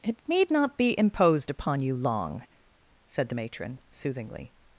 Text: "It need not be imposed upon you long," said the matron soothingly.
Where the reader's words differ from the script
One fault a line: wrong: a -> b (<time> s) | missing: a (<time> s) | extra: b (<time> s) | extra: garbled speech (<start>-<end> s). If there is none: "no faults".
no faults